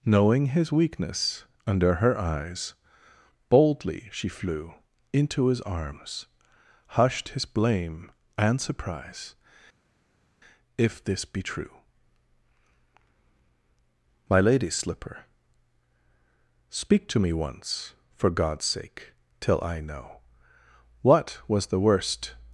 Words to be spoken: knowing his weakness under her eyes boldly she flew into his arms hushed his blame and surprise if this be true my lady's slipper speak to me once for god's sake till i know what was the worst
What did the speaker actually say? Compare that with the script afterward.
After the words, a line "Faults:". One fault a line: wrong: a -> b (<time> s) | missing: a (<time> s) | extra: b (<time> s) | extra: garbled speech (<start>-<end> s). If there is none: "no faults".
knowing his weakness under her eyes boldly she flew into his arms hushed his blame and surprise if this be true my lady's slipper speak to me once for god's sake till i know what was the worst
Faults:
no faults